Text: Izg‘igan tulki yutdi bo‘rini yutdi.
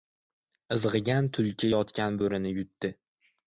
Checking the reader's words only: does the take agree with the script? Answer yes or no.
no